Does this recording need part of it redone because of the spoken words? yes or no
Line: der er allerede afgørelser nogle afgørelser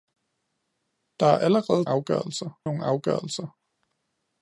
no